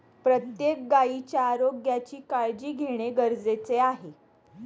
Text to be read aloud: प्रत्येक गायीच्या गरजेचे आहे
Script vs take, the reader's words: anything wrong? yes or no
yes